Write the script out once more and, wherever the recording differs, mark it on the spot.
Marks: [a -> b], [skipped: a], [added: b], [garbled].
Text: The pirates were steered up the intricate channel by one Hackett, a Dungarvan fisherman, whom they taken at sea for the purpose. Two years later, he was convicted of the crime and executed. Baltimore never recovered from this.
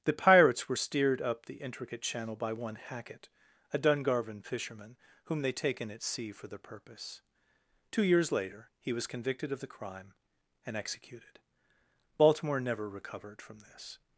The pirates were steered up the intricate channel by one Hackett, a Dungarvan fisherman, whom they taken at sea for the purpose. Two years later, he was convicted of the crime and executed. Baltimore never recovered from this.